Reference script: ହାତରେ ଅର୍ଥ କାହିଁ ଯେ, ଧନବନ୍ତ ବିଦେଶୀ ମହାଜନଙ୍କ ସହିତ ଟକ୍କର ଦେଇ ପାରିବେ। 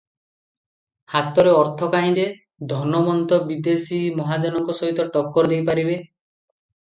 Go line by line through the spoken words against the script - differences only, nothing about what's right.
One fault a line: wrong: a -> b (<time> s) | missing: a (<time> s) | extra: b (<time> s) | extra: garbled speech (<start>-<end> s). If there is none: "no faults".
no faults